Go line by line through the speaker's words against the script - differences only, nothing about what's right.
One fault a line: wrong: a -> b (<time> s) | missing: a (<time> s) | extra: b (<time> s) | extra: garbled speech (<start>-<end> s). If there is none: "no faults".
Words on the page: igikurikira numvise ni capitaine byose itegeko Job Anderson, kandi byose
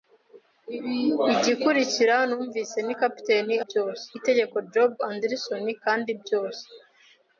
no faults